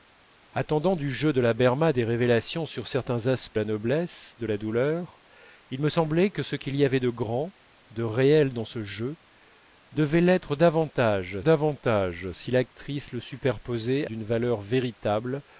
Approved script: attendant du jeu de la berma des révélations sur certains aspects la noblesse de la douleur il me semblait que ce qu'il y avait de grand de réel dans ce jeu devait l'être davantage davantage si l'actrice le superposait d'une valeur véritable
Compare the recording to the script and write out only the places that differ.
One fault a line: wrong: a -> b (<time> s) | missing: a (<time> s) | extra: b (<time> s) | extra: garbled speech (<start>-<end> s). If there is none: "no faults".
no faults